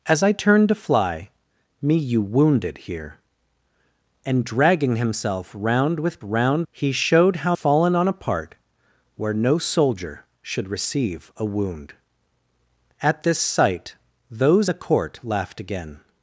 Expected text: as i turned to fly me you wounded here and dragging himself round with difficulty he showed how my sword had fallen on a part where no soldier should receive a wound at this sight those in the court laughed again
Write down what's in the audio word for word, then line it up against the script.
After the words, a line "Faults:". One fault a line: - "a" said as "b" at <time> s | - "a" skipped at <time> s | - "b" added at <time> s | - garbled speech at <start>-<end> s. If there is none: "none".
as i turned to fly me you wounded here and dragging himself round with round he showed how fallen on a part where no soldier should receive a wound at this sight those the court laughed again
Faults:
- "difficulty" said as "round" at 6.2 s
- "my sword had" skipped at 7.6 s
- "in" skipped at 14.7 s